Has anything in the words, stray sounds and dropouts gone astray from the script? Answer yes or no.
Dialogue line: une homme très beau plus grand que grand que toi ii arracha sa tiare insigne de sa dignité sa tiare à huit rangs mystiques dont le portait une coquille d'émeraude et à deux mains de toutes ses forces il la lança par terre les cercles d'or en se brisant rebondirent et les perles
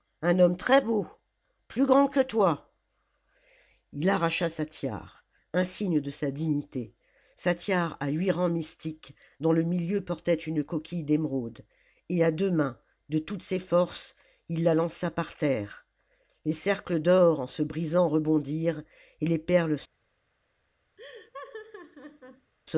yes